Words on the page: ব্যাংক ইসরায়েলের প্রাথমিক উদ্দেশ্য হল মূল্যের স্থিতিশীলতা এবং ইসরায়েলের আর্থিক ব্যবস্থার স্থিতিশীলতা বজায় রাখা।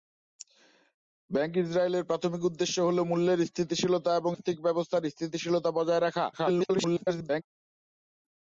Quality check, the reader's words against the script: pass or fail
fail